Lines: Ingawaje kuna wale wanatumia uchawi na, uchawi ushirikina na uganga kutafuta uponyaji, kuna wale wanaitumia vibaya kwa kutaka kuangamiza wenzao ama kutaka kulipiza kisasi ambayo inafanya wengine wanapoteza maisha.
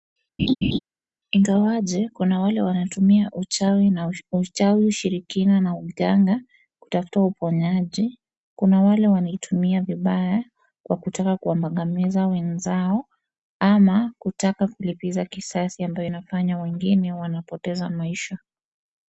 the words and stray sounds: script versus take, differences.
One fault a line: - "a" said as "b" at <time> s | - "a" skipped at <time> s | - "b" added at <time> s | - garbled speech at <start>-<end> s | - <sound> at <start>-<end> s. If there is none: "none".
- laugh at 0.4-0.8 s